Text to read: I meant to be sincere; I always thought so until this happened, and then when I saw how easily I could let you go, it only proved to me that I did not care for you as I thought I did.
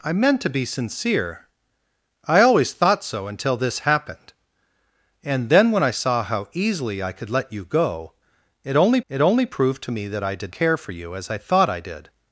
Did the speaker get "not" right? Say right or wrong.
wrong